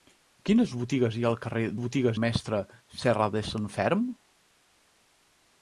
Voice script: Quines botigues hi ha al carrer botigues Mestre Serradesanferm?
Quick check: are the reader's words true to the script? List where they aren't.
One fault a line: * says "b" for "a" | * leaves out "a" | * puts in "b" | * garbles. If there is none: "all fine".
all fine